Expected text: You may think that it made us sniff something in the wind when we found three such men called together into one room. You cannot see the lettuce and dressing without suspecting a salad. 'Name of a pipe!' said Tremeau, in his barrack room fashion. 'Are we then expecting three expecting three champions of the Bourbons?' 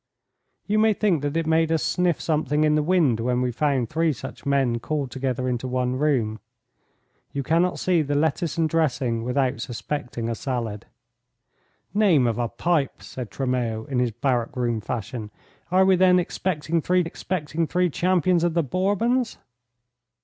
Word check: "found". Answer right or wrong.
right